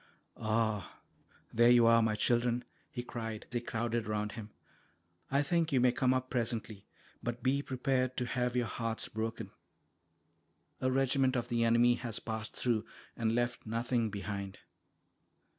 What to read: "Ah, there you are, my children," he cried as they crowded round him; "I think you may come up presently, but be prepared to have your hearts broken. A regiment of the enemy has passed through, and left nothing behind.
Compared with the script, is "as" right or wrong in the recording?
wrong